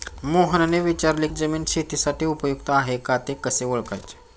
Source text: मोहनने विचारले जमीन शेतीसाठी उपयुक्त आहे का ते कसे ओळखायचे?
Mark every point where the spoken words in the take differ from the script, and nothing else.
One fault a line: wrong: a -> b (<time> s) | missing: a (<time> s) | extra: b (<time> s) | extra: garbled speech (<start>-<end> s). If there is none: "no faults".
no faults